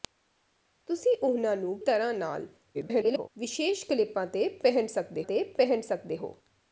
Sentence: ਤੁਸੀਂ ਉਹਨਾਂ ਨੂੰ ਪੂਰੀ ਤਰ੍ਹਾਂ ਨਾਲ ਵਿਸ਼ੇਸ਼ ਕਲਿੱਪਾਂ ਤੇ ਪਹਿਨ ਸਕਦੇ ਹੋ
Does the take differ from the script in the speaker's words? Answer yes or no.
yes